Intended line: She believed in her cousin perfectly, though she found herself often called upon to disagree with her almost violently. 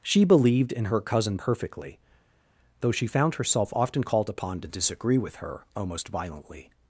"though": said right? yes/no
yes